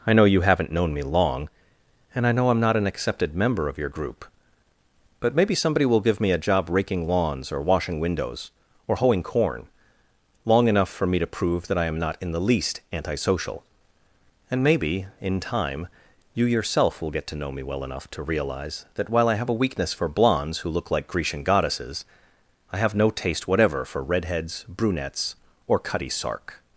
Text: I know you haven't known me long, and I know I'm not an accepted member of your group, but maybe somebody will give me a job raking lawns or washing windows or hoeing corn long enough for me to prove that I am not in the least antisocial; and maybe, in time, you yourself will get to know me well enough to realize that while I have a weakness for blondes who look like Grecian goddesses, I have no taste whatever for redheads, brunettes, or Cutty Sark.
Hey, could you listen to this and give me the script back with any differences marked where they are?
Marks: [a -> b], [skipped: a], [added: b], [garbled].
I know you haven't known me long, and I know I'm not an accepted member of your group, but maybe somebody will give me a job raking lawns or washing windows or hoeing corn long enough for me to prove that I am not in the least antisocial; and maybe, in time, you yourself will get to know me well enough to realize that while I have a weakness for blondes who look like Grecian goddesses, I have no taste whatever for redheads, brunettes, or Cutty Sark.